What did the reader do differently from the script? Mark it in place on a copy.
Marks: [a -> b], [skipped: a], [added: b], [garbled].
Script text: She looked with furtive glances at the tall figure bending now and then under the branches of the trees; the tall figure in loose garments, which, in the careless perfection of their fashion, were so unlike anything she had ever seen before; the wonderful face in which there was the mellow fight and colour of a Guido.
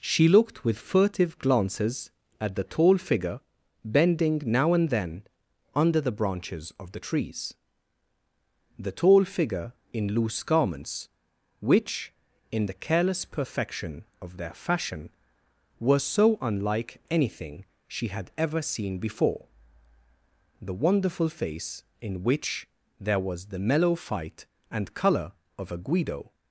She looked with furtive glances at the tall figure bending now and then under the branches of the trees; the tall figure in loose garments, which, in the careless perfection of their fashion, were so unlike anything she had ever seen before; the wonderful face in which there was the mellow fight and colour of a Guido.